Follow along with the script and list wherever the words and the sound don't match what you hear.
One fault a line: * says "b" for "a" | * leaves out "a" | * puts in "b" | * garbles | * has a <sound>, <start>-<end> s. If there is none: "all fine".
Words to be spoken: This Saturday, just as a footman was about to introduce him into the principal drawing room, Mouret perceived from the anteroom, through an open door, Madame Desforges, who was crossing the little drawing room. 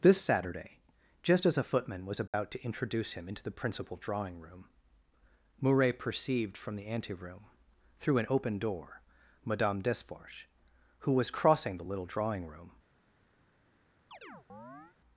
* has a dropout, 2.3-2.3 s
* has a chirp, 14.1-15.0 s